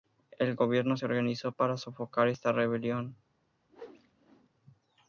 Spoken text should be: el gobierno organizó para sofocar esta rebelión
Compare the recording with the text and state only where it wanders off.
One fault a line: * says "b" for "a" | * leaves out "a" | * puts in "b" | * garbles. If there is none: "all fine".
* puts in "se"